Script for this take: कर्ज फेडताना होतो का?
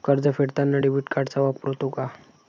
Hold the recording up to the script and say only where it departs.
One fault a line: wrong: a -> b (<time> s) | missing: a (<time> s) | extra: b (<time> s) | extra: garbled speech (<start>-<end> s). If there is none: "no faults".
extra: डेबिट कार्डचा वापर (0.8 s)